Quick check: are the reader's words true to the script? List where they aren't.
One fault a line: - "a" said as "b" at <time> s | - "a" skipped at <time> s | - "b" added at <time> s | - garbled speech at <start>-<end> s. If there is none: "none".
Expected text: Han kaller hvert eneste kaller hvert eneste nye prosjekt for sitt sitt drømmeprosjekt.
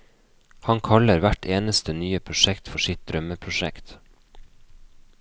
- "kaller hvert eneste" skipped at 1.9 s
- "sitt" skipped at 3.0 s